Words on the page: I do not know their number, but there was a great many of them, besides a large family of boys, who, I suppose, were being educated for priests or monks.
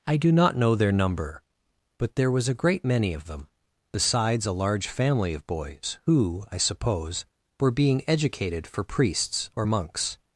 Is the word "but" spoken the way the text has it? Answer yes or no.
yes